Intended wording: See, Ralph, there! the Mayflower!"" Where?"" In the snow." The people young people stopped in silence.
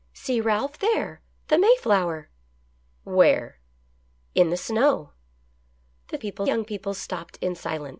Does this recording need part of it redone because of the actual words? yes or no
no